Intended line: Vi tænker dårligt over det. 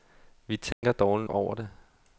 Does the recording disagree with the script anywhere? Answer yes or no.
no